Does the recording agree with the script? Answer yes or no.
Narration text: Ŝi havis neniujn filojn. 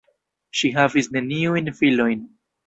yes